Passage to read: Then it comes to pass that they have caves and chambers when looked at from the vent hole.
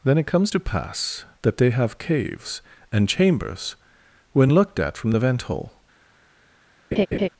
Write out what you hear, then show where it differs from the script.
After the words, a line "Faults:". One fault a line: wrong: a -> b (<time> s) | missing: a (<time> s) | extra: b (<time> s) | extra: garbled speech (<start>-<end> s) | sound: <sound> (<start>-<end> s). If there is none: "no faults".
Then it comes to pass that they have caves and chambers when looked at from the vent hole.
Faults:
sound: laugh (6.9-7.3 s)